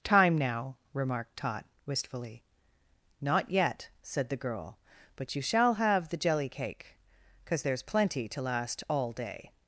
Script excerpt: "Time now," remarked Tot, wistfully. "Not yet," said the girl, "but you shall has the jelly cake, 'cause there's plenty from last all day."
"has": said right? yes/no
no